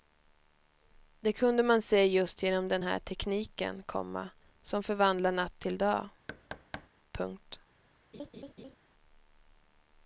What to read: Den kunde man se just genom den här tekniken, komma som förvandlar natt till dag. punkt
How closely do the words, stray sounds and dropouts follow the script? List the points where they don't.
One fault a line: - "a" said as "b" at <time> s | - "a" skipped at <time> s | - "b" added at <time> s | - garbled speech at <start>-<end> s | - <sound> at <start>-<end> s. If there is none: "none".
- "Den" said as "Det" at 1.2 s
- thud at 6.3-6.9 s
- laugh at 8.1-8.8 s